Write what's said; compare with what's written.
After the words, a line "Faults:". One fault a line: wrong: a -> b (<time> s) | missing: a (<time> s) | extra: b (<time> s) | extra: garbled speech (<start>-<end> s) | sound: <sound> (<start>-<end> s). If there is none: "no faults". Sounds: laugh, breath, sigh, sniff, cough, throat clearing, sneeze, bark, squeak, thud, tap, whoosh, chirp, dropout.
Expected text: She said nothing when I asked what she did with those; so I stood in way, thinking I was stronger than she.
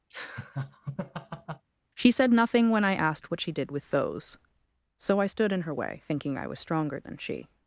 She said nothing when I asked what she did with those; so I stood in her way, thinking I was stronger than she.
Faults:
sound: laugh (0.1-1.7 s)
extra: her (5.6 s)